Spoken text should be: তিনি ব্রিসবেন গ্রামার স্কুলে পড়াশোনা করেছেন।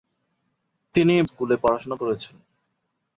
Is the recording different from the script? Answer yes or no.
yes